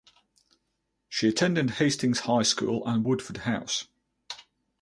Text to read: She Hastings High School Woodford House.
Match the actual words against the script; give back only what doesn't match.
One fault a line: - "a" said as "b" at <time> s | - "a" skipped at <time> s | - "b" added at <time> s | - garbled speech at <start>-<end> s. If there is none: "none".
- "attended" added at 1.3 s
- "and" added at 2.9 s